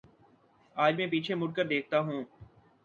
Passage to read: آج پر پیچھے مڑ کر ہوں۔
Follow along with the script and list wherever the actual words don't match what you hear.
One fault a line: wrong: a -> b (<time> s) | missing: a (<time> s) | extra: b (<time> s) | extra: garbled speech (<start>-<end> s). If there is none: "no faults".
wrong: پر -> میں (1.0 s)
extra: دیکھتا (1.7 s)